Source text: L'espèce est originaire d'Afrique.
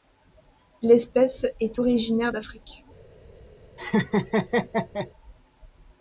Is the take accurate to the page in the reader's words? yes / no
yes